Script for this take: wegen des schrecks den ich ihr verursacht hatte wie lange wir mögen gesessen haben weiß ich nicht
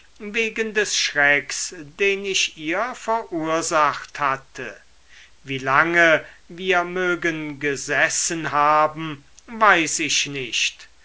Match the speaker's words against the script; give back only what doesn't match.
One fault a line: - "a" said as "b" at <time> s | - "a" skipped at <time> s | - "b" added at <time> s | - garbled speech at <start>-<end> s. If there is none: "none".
none